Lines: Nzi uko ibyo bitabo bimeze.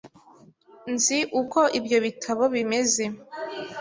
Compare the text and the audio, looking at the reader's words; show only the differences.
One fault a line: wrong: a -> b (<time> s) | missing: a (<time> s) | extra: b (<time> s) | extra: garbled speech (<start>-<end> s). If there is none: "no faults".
no faults